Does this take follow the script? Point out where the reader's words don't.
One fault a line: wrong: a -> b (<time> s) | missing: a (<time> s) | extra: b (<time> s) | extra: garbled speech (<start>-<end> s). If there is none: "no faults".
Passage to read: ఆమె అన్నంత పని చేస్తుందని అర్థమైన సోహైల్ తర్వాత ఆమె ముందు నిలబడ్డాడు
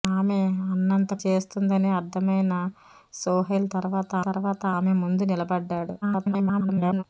missing: పని (1.1 s)
extra: తర్వాత (4.2 s)
extra: garbled speech (6.0-7.0 s)